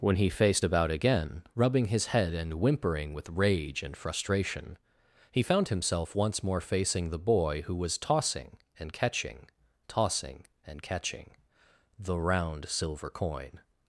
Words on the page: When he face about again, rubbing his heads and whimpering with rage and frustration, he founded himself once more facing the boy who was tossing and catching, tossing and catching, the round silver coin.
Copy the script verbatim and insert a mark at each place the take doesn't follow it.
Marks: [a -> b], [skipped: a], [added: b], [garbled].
When he [face -> faced] about again, rubbing his [heads -> head] and whimpering with rage and frustration, he [founded -> found] himself once more facing the boy who was tossing and catching, tossing and catching, the round silver coin.